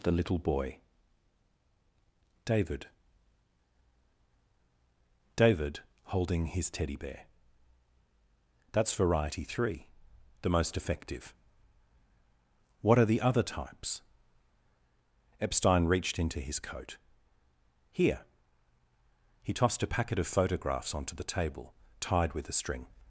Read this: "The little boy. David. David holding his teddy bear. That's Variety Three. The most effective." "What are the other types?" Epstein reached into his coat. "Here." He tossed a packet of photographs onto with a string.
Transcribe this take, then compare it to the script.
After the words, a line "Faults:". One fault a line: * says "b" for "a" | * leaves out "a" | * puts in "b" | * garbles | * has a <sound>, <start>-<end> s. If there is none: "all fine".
"The little boy. David. David holding his teddy bear. That's Variety Three. The most effective." "What are the other types?" Epstein reached into his coat. "Here." He tossed a packet of photographs onto the table, tied with a string.
Faults:
* puts in "the table tied"